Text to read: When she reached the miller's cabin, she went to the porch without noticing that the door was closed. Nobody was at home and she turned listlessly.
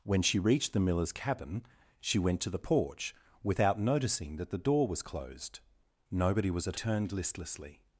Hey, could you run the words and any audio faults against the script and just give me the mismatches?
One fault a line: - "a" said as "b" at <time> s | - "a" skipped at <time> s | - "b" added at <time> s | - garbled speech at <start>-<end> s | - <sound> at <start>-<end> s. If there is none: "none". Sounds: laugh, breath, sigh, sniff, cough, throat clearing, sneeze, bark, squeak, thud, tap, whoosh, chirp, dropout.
- "home and she" skipped at 6.8 s